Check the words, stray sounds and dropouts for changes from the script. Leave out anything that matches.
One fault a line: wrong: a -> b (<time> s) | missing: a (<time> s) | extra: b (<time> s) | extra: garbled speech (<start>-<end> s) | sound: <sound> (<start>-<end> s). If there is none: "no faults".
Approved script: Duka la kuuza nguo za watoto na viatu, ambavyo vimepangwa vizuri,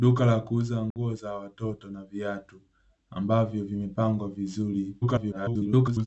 sound: dropout (0.9-1.0 s)
extra: garbled speech (5.0-6.1 s)